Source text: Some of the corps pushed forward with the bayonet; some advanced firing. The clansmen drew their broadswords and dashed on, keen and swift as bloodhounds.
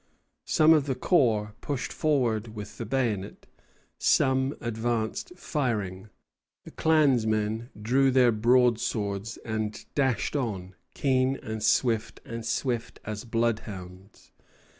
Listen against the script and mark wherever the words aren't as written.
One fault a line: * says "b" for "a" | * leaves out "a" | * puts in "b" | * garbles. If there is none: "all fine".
* puts in "and swift"